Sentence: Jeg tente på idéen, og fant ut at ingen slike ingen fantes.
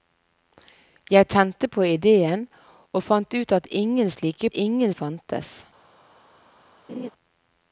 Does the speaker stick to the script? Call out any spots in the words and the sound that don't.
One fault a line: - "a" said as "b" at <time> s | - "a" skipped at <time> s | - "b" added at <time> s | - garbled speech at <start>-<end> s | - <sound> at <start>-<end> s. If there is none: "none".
- laugh at 6.9-7.1 s